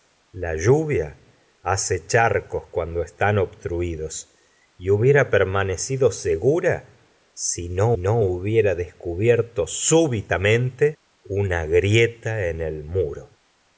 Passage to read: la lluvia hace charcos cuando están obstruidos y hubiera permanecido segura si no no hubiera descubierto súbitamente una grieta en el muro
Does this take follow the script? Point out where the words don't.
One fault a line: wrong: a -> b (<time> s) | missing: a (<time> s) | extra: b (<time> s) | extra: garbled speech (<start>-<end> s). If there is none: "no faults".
no faults